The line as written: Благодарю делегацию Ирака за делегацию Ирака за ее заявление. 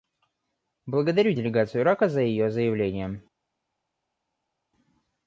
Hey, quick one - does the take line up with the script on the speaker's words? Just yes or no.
no